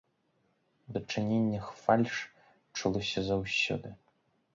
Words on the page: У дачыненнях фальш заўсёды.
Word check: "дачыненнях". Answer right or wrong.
right